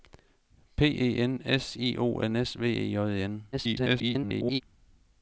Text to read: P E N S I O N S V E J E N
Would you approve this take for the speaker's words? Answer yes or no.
no